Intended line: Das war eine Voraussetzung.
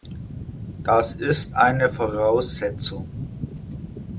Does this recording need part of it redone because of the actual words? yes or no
yes